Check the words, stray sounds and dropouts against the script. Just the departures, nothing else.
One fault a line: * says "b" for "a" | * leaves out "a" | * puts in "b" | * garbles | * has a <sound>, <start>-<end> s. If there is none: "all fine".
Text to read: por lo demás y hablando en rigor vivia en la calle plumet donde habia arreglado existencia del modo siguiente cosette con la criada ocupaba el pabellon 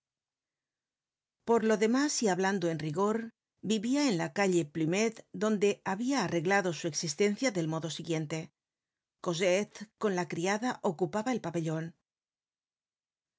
* puts in "su"